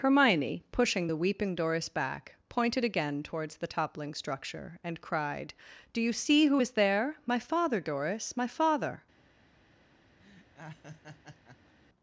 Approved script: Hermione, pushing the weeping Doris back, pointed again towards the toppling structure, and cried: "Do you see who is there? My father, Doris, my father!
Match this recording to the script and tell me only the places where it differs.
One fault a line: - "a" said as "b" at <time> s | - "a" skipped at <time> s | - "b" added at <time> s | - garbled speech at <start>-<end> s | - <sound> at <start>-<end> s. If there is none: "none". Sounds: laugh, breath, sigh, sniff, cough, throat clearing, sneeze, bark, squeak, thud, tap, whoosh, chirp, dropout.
- laugh at 10.2-11.8 s